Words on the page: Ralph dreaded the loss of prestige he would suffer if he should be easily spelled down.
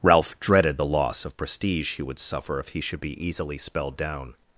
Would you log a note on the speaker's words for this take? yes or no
no